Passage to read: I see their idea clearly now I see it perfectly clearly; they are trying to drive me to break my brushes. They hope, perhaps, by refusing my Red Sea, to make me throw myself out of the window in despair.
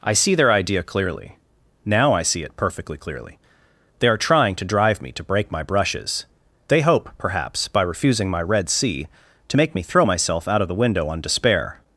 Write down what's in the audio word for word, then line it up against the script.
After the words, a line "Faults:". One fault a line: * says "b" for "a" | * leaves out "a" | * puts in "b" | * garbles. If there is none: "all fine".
I see their idea clearly now I see it perfectly clearly; they are trying to drive me to break my brushes. They hope, perhaps, by refusing my Red Sea, to make me throw myself out of the window on despair.
Faults:
* says "on" for "in"